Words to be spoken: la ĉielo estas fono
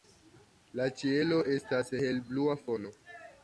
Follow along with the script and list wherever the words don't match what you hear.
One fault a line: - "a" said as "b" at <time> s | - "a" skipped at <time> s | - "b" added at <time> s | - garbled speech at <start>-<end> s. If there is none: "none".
- "helblua" added at 2.1 s